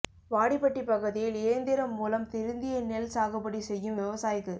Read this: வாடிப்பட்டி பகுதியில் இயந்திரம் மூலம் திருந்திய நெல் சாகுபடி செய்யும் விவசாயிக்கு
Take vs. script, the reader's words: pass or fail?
pass